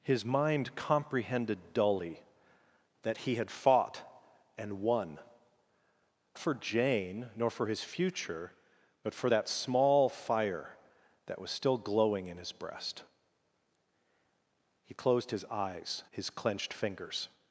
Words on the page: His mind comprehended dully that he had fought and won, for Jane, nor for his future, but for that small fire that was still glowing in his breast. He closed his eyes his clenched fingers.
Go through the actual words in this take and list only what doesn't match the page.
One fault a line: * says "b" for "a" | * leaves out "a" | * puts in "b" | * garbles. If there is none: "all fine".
all fine